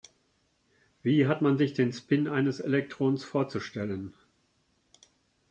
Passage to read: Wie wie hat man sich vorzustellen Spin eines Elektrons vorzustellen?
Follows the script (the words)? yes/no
no